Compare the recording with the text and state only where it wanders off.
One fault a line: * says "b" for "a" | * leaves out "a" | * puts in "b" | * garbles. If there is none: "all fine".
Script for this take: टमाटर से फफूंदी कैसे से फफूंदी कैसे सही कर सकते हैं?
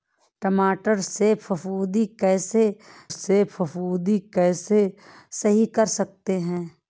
all fine